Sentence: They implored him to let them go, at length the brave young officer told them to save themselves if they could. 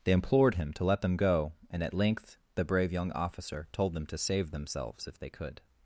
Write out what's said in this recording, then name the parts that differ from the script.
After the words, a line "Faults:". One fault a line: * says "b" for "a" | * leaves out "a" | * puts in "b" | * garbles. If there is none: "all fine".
They implored him to let them go, and at length the brave young officer told them to save themselves if they could.
Faults:
* puts in "and"